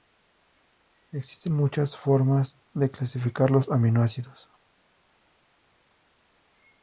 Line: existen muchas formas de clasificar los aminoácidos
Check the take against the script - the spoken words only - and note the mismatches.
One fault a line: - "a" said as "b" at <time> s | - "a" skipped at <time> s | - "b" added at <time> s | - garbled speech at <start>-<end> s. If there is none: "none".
none